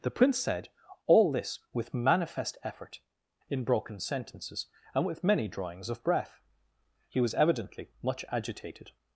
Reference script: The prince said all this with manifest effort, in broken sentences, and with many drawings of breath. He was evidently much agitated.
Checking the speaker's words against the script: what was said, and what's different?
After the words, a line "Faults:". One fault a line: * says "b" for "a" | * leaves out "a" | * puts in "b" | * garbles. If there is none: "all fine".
The prince said all this with manifest effort, in broken sentences, and with many drawings of breath. He was evidently much agitated.
Faults:
all fine